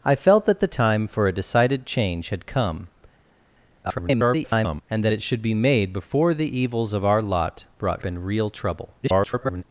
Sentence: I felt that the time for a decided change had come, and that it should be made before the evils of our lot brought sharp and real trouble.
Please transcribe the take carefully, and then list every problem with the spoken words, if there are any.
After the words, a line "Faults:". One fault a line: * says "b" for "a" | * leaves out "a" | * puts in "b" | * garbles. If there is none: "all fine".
I felt that the time for a decided change had come, [garbled] and that it should be made before the evils of our lot brought and real trouble. [garbled]
Faults:
* garbles
* leaves out "sharp"
* garbles